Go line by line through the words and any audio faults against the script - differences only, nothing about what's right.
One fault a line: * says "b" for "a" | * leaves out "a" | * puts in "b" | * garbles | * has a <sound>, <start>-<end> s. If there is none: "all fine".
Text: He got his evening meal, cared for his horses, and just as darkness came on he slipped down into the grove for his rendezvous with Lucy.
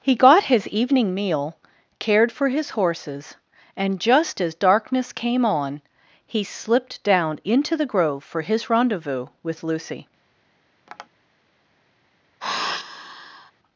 * has a tap, 10.9-11.1 s
* has a sigh, 12.4-13.5 s